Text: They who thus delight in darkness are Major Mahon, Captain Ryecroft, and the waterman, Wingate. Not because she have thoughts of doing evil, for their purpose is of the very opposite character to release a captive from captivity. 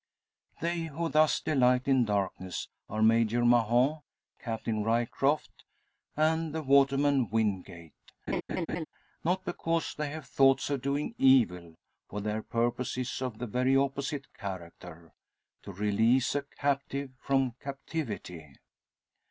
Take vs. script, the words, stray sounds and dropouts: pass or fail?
fail